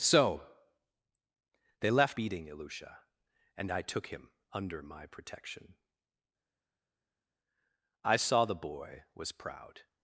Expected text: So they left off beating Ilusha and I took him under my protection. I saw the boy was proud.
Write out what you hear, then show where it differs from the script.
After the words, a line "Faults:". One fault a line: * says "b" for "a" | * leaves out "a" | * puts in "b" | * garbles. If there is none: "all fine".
So they left beating Ilusha and I took him under my protection. I saw the boy was proud.
Faults:
* leaves out "off"